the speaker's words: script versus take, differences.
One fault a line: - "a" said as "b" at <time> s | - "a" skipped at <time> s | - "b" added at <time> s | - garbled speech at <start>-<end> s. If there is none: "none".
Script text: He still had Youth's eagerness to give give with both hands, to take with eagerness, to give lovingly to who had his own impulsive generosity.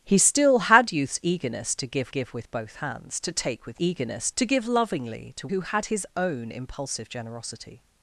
none